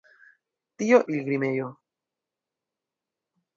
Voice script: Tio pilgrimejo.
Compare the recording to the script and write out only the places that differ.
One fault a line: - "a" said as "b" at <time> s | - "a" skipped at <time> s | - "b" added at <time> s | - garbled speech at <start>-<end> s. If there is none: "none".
none